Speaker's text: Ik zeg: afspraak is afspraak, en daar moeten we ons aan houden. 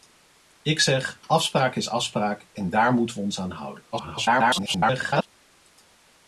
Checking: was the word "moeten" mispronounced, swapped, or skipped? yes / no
no